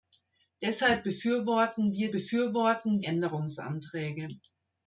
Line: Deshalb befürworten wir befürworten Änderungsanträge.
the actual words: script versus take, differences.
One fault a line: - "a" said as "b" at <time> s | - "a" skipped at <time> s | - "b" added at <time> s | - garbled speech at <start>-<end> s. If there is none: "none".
none